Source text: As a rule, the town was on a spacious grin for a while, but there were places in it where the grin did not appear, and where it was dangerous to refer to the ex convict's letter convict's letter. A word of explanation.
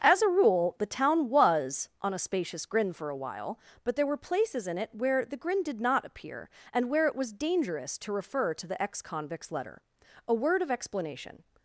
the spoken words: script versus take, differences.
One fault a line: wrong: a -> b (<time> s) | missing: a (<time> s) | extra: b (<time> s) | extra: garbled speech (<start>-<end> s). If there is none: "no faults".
missing: convict's letter (9.8 s)